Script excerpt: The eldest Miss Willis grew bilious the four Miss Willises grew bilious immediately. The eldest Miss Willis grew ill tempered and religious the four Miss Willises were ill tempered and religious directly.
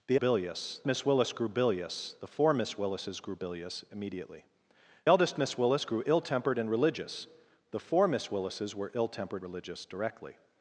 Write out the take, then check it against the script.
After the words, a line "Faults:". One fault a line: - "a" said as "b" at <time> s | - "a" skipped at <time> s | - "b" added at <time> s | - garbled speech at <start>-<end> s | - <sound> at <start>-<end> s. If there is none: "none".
The bilious Miss Willis grew bilious the four Miss Willises grew bilious immediately. Eldest Miss Willis grew ill tempered and religious the four Miss Willises were ill tempered religious directly.
Faults:
- "eldest" said as "bilious" at 0.1 s
- "The" skipped at 4.4 s
- "and" skipped at 9.4 s